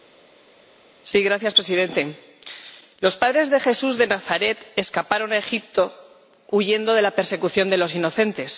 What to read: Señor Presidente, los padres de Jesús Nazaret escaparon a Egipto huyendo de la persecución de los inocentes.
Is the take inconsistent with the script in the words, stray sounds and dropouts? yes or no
yes